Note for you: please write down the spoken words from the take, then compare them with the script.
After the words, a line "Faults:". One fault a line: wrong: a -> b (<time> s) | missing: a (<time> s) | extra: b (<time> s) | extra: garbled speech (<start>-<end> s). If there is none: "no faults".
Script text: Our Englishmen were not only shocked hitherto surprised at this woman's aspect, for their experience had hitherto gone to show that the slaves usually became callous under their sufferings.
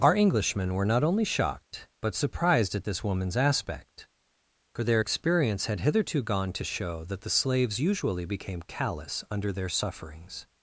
Our Englishmen were not only shocked but surprised at this woman's aspect, for their experience had hitherto gone to show that the slaves usually became callous under their sufferings.
Faults:
wrong: hitherto -> but (2.0 s)